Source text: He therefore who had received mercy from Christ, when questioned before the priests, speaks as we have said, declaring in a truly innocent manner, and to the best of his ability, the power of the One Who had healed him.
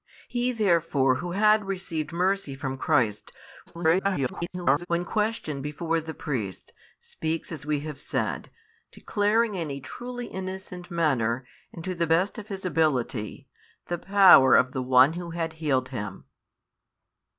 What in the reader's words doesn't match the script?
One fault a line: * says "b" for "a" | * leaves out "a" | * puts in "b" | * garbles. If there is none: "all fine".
* garbles